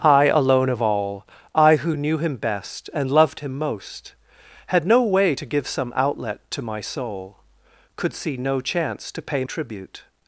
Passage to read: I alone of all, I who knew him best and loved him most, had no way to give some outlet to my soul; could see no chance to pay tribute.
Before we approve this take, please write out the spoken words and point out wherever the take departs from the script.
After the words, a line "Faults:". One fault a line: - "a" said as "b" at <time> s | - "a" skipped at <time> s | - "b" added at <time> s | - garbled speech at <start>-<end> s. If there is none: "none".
I alone of all, I who knew him best and loved him most, had no way to give some outlet to my soul; could see no chance to pay tribute.
Faults:
none